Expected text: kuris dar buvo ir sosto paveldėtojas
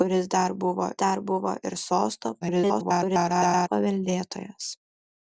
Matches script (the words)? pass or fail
fail